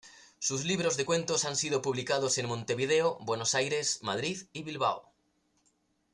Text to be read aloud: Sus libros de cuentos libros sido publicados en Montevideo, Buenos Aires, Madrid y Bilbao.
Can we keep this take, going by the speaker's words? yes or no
no